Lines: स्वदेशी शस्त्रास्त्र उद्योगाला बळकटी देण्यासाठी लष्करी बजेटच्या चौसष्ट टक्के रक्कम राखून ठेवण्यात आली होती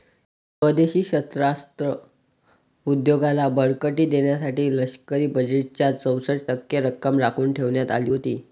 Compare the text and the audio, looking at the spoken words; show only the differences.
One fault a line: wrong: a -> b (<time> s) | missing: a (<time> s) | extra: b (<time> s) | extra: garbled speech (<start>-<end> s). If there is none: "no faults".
no faults